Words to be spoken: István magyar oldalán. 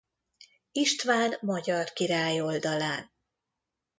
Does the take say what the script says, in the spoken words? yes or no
no